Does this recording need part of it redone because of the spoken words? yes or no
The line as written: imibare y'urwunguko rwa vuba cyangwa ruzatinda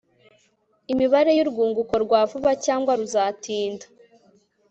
no